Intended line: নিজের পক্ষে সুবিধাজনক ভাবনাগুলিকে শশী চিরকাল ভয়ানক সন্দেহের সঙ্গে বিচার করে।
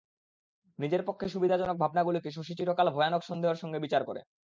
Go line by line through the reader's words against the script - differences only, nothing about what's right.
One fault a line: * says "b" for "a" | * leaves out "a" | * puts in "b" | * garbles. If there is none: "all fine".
all fine